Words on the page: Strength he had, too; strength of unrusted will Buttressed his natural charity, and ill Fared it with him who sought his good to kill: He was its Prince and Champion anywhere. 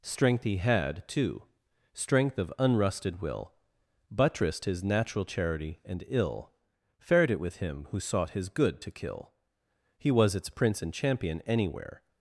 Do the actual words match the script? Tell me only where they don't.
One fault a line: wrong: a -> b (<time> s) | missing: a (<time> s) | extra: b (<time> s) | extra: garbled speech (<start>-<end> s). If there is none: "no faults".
no faults